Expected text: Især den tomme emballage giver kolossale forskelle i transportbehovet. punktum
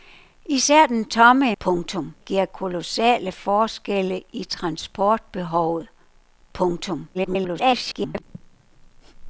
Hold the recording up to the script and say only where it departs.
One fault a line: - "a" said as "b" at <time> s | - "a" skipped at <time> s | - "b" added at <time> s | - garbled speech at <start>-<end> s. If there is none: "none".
- "emballage" said as "punktum" at 1.6 s
- garbled speech at 7.1-8.2 s